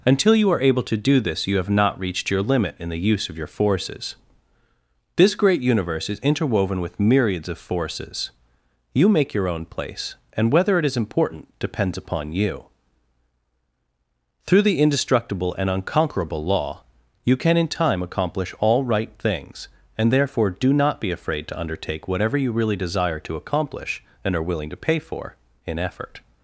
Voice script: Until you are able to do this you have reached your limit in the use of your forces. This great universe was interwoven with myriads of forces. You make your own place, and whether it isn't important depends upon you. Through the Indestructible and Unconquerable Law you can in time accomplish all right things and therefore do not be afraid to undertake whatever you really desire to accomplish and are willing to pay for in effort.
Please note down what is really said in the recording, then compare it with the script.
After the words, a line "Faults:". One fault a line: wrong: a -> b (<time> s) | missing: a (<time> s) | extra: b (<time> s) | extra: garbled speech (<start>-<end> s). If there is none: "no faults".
Until you are able to do this you have not reached your limit in the use of your forces. This great universe is interwoven with myriads of forces. You make your own place, and whether it is important depends upon you. Through the Indestructible and Unconquerable Law you can in time accomplish all right things and therefore do not be afraid to undertake whatever you really desire to accomplish and are willing to pay for in effort.
Faults:
extra: not (1.7 s)
wrong: was -> is (6.1 s)
wrong: isn't -> is (10.8 s)